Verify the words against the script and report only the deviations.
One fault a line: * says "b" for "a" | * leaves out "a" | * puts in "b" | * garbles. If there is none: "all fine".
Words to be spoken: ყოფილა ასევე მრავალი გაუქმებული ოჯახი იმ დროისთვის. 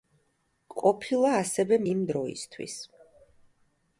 * leaves out "მრავალი გაუქმებული ოჯახი"